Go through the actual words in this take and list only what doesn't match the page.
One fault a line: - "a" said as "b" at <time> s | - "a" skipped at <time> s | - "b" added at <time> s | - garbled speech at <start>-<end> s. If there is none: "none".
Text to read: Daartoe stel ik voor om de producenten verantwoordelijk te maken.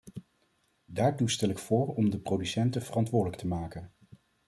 none